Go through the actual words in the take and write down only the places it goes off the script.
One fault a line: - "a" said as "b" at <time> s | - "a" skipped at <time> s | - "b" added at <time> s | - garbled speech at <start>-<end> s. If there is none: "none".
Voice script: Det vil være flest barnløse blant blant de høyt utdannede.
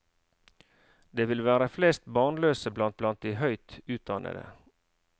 none